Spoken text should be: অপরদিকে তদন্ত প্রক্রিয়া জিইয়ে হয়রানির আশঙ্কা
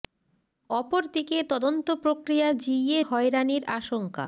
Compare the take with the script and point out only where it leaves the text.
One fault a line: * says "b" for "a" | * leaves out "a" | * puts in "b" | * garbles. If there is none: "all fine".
all fine